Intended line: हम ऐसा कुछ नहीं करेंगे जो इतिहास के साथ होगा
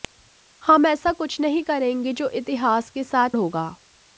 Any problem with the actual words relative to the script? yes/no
no